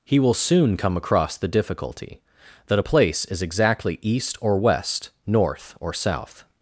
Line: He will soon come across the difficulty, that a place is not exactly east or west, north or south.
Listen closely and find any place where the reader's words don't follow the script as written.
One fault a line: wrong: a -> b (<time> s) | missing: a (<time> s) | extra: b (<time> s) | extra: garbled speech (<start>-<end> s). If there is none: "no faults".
missing: not (3.4 s)